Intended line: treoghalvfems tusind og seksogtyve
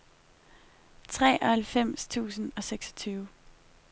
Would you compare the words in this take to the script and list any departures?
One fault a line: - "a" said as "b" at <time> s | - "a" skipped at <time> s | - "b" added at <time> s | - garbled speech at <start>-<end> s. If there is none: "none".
none